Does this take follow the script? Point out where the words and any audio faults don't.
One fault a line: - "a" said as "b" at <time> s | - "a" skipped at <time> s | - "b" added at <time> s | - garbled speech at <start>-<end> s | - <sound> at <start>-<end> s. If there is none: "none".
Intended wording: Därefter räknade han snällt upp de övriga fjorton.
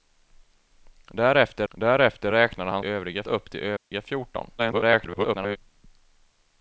- "därefter" added at 1.7 s
- "snällt" said as "övriga" at 2.8 s
- dropout at 3.8-3.9 s
- garbled speech at 4.6-5.6 s